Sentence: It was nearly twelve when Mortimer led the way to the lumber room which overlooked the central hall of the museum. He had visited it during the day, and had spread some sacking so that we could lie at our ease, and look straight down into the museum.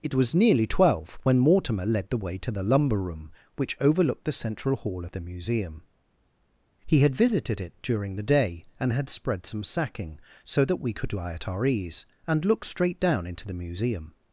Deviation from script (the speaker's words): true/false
false